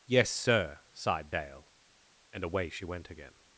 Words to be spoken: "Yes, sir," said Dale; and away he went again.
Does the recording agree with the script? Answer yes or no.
no